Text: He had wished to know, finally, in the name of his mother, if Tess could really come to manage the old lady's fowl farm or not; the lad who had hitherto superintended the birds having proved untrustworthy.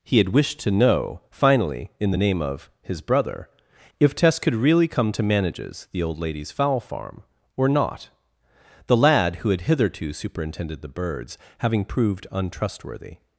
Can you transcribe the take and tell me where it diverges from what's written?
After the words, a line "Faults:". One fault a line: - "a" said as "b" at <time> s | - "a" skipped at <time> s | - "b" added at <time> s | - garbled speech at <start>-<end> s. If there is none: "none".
He had wished to know, finally, in the name of his brother, if Tess could really come to manages the old lady's fowl farm or not; the lad who had hitherto superintended the birds having proved untrustworthy.
Faults:
- "mother" said as "brother" at 3.0 s
- "manage" said as "manages" at 5.2 s